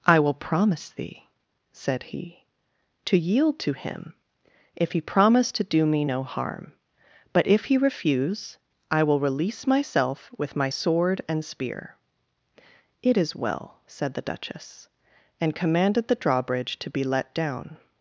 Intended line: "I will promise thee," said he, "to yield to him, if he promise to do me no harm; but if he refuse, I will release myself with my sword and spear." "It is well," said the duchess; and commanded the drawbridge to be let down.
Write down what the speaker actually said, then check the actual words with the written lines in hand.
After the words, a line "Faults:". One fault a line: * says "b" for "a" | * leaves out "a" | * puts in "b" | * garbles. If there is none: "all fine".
"I will promise thee," said he, "to yield to him, if he promise to do me no harm; but if he refuse, I will release myself with my sword and spear." "It is well," said the duchess; and commanded the drawbridge to be let down.
Faults:
all fine